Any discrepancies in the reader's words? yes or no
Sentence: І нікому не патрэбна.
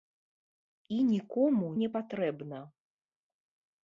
no